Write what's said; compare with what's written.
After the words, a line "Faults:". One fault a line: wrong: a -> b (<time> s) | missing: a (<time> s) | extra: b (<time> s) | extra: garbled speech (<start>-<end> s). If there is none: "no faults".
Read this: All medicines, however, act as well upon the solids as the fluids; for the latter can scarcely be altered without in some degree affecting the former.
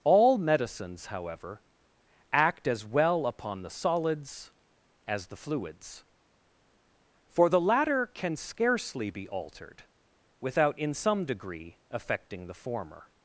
All medicines, however, act as well upon the solids as the fluids; for the latter can scarcely be altered without in some degree affecting the former.
Faults:
no faults